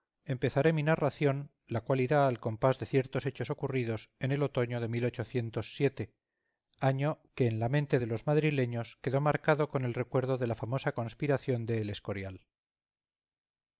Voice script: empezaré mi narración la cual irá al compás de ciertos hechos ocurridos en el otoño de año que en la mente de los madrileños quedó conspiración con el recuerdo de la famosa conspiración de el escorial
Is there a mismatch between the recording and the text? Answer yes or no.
yes